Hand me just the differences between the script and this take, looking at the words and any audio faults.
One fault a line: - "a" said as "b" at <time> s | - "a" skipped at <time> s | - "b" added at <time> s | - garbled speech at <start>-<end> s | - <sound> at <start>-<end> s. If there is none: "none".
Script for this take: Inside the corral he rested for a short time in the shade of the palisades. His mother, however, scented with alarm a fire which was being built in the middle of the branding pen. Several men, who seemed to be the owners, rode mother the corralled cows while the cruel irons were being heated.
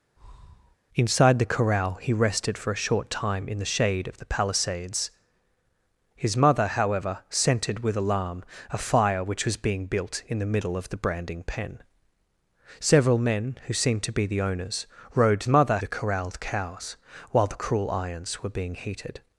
- breath at 0.2-0.8 s